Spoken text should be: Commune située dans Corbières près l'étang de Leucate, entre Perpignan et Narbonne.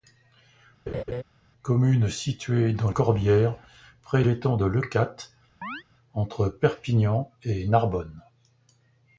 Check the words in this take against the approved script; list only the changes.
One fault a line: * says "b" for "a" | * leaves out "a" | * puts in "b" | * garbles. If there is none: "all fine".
all fine